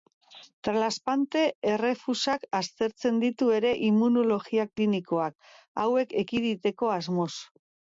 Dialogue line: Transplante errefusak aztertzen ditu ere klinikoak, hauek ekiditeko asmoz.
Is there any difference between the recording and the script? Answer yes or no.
yes